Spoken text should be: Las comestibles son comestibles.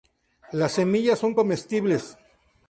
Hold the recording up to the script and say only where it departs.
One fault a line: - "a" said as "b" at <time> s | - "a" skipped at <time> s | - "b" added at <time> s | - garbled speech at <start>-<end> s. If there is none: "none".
- "comestibles" said as "semillas" at 0.7 s